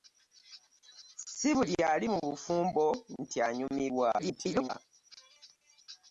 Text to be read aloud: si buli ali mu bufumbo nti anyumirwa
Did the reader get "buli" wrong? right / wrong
right